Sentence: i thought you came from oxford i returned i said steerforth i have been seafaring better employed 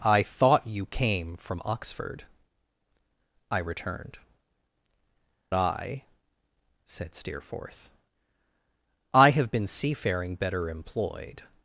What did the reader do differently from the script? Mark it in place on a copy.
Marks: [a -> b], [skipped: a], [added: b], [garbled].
i thought you came from oxford i returned i said steerforth i have been seafaring better employed